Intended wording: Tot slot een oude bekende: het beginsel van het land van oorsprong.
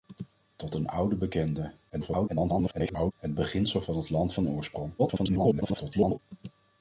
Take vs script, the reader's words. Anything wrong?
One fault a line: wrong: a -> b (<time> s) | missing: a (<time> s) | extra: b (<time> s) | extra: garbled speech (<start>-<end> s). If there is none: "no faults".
missing: slot (0.8 s)
extra: garbled speech (1.9-3.1 s)
extra: garbled speech (5.0-6.2 s)